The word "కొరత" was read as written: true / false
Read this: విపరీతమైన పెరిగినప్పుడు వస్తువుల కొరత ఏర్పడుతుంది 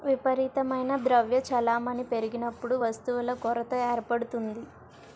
true